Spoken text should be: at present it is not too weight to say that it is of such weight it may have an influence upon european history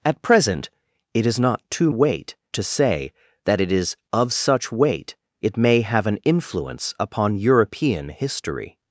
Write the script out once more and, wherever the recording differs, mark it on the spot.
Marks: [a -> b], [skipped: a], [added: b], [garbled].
at present it is not too weight to say that it is of such weight it may have an influence upon european history